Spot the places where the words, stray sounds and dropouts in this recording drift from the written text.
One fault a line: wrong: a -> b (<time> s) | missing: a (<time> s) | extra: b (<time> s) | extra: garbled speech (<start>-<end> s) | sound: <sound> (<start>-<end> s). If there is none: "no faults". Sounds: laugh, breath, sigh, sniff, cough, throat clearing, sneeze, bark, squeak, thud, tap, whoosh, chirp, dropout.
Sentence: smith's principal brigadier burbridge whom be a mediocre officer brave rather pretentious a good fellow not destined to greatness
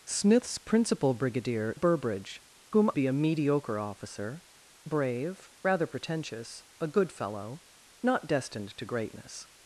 no faults